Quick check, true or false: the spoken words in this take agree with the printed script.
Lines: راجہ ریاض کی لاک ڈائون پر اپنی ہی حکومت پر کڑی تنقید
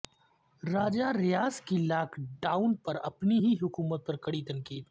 true